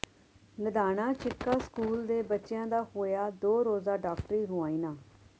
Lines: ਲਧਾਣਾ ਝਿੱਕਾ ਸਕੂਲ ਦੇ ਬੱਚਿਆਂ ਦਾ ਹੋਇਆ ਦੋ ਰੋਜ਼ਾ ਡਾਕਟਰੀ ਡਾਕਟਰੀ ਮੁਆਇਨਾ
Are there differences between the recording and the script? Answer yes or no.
yes